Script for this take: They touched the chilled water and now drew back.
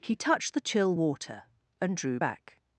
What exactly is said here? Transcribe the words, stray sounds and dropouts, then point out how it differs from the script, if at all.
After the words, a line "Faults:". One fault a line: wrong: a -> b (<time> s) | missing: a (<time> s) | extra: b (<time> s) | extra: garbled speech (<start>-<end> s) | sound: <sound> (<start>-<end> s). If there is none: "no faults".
He touched the chill water and drew back.
Faults:
wrong: They -> He (0.0 s)
wrong: chilled -> chill (0.6 s)
missing: now (1.9 s)